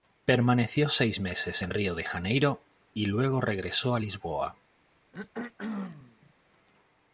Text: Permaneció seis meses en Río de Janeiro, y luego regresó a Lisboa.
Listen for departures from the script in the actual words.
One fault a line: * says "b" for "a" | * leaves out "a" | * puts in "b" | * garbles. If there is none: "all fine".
all fine